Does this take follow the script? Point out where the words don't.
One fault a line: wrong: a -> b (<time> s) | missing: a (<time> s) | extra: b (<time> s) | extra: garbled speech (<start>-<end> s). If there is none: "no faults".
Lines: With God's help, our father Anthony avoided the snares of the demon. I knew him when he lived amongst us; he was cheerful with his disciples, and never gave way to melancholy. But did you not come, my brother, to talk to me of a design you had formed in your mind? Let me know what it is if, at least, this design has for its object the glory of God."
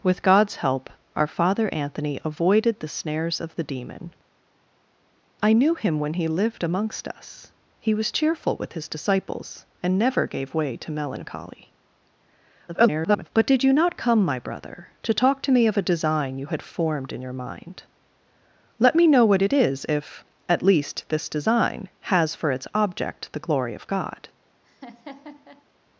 extra: garbled speech (12.7-13.3 s)